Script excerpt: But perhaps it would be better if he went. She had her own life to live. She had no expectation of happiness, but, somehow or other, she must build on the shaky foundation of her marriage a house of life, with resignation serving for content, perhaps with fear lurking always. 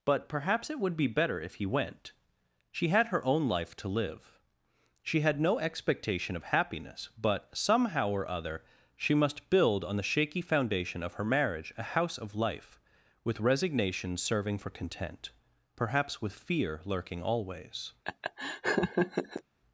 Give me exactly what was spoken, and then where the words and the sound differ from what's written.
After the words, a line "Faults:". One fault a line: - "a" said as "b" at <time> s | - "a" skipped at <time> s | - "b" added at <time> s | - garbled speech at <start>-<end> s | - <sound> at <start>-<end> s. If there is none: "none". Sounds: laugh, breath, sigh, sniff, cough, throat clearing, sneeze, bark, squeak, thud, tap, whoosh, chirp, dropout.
But perhaps it would be better if he went. She had her own life to live. She had no expectation of happiness, but, somehow or other, she must build on the shaky foundation of her marriage a house of life, with resignation serving for content, perhaps with fear lurking always.
Faults:
- laugh at 18.0-19.4 s